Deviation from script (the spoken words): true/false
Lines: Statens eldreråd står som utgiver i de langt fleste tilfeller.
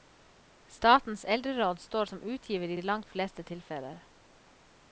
false